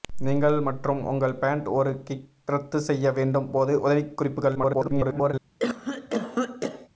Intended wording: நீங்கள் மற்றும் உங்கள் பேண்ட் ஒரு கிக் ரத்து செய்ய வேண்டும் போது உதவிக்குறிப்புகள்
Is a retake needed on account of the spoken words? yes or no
yes